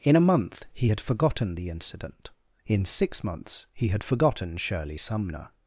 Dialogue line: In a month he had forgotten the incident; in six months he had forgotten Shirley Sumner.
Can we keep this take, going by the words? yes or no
yes